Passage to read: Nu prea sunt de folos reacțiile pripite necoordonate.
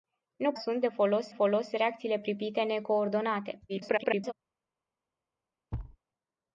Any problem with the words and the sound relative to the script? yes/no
yes